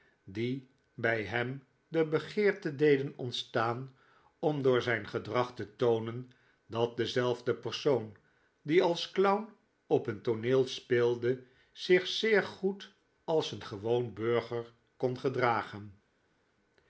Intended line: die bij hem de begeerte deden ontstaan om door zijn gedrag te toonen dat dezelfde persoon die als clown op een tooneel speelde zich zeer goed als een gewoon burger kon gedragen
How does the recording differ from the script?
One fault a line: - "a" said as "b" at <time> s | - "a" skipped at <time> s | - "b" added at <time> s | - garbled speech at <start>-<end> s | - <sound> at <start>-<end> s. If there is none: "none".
none